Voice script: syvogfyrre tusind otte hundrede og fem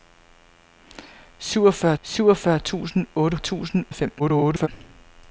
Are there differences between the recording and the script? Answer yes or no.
yes